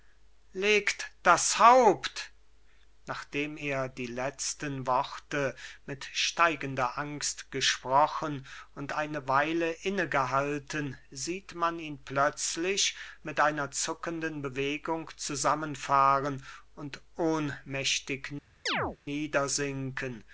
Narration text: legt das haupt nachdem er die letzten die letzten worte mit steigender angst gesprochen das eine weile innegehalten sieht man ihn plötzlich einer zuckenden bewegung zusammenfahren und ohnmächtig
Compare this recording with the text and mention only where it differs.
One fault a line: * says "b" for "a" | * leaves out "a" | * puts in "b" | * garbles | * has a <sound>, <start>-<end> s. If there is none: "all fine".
* leaves out "die letzten"
* says "und" for "das"
* puts in "mit"
* has a chirp, 18.7-19.0 s